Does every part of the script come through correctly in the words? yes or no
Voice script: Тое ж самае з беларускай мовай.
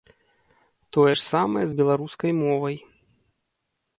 yes